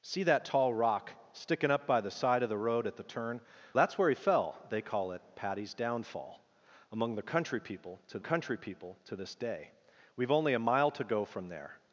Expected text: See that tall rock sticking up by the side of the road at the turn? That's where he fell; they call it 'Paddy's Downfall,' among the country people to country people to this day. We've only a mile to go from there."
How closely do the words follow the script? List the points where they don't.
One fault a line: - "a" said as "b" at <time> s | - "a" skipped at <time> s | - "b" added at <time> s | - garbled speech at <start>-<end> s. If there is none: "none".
none